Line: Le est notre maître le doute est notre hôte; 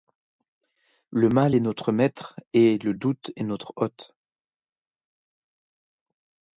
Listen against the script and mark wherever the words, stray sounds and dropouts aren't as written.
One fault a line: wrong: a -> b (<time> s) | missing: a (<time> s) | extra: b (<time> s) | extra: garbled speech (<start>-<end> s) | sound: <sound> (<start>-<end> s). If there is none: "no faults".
extra: mal (1.3 s)
extra: et (2.5 s)